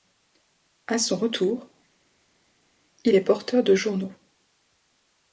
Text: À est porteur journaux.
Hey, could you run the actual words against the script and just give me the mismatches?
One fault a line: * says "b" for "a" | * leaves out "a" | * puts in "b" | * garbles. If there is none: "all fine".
* puts in "son retour il"
* puts in "de"